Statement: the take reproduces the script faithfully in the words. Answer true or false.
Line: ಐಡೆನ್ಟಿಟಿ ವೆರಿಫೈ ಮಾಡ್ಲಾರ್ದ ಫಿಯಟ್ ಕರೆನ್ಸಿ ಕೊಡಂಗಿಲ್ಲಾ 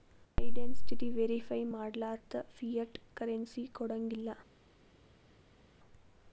true